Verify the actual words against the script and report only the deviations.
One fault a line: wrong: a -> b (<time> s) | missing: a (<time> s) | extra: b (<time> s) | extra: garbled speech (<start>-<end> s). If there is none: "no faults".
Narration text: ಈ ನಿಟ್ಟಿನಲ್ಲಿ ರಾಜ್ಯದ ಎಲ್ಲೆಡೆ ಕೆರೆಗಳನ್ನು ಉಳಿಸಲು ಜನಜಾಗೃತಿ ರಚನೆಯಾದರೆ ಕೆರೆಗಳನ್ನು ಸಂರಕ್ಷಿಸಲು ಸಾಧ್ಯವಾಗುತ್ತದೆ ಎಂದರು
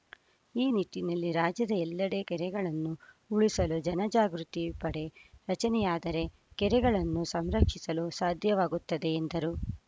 extra: ಪಡೆ (4.8 s)